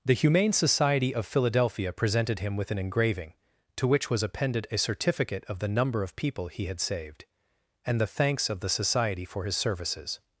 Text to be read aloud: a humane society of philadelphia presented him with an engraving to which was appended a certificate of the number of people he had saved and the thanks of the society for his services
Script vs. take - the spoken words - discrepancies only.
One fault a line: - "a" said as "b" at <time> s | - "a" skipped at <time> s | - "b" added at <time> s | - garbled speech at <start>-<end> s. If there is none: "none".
- "a" said as "the" at 0.0 s